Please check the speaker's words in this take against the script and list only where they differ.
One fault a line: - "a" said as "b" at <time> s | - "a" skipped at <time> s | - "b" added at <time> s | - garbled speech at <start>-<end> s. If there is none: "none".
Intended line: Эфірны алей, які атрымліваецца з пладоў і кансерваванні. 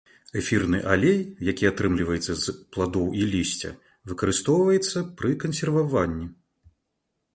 - "лісця выкарыстоўваецца пры" added at 3.3 s